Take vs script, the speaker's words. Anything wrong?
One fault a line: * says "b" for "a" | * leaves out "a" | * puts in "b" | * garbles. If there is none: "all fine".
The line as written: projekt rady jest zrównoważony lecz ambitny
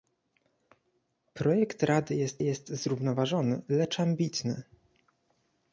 * puts in "jest"